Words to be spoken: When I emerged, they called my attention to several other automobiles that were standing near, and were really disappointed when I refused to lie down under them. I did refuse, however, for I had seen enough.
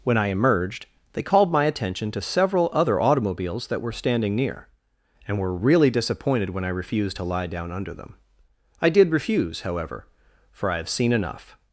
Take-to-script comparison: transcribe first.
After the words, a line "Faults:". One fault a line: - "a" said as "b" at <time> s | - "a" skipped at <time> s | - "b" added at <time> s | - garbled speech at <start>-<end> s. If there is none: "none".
When I emerged, they called my attention to several other automobiles that were standing near, and were really disappointed when I refused to lie down under them. I did refuse, however, for I have seen enough.
Faults:
- "had" said as "have" at 10.8 s